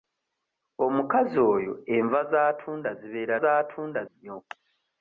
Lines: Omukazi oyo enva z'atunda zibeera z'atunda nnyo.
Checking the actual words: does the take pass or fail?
pass